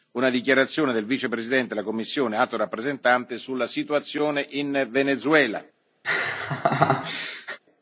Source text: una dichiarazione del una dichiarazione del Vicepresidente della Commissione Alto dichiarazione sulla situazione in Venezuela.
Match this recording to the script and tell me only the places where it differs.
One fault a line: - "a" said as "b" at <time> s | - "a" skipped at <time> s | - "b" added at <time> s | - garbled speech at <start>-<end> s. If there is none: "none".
- "una dichiarazione del" skipped at 1.1 s
- "dichiarazione" said as "rappresentante" at 2.6 s